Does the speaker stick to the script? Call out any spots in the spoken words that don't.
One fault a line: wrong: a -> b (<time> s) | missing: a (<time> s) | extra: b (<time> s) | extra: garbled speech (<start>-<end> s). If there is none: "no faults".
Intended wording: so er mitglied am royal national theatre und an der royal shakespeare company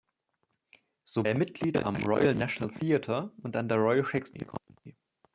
no faults